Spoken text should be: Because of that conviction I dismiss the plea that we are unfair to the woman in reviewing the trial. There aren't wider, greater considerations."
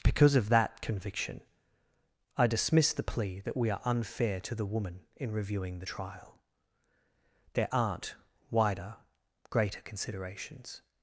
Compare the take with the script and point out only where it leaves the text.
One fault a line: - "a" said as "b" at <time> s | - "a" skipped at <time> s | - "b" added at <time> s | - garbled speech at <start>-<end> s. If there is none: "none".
none